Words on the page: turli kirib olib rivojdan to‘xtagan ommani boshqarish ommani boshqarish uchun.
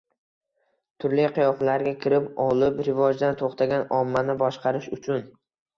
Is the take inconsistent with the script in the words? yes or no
yes